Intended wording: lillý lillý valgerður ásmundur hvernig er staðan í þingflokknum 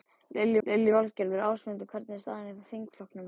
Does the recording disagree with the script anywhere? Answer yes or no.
no